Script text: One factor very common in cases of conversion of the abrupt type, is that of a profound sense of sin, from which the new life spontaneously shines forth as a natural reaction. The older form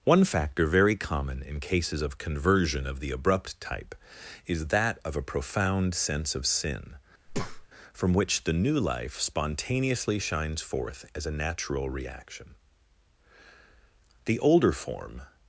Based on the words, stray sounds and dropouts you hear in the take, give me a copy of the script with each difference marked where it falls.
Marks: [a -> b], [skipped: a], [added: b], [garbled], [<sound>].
One factor very common in cases of conversion of the abrupt type, is that of a profound sense of sin, [breath] from which the new life spontaneously shines forth as a natural reaction. The older form